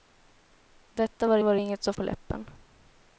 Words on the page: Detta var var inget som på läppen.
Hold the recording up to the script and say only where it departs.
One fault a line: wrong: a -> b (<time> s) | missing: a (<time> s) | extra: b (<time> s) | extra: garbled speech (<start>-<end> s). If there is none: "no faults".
no faults